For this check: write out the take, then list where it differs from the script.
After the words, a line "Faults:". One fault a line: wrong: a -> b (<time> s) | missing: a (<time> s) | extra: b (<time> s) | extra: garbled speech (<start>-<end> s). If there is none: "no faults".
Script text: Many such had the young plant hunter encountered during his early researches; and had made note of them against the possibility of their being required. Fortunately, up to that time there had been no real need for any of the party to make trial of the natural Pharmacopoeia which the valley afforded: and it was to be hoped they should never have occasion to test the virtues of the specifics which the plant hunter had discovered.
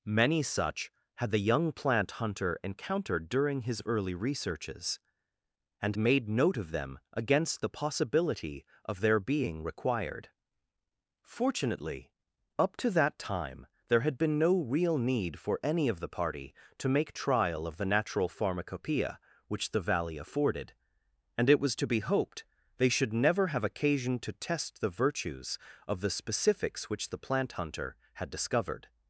Many such had the young plant hunter encountered during his early researches; and made note of them against the possibility of their being required. Fortunately, up to that time there had been no real need for any of the party to make trial of the natural Pharmacopoeia which the valley afforded: and it was to be hoped they should never have occasion to test the virtues of the specifics which the plant hunter had discovered.
Faults:
missing: had (6.0 s)